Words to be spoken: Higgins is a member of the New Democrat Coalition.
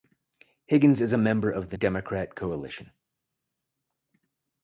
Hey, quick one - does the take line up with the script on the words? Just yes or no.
no